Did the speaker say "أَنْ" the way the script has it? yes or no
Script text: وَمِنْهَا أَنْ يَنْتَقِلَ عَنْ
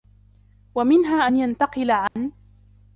yes